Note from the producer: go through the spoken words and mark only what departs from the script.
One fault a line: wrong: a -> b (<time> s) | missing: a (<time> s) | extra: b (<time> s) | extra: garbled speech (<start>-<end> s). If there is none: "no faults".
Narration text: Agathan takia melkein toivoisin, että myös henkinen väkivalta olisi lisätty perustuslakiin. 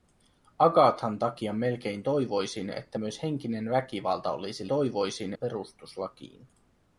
wrong: lisätty -> toivoisin (4.7 s)